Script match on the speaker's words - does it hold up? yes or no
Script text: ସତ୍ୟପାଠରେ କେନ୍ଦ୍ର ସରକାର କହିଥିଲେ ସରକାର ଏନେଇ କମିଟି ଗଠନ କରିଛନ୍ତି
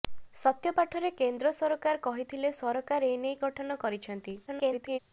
no